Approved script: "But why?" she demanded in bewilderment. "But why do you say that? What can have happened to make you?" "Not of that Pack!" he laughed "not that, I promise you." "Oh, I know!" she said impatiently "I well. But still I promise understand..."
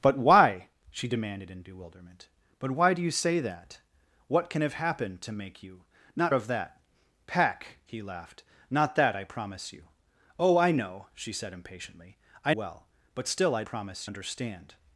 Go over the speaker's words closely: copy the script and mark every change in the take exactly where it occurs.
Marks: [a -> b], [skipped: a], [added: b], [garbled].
"But why?" she demanded in bewilderment. "But why do you say that? What can have happened to make you?" "Not of that Pack!" he laughed "not that, I promise you." "Oh, I know!" she said impatiently "I well. But still I promise understand..."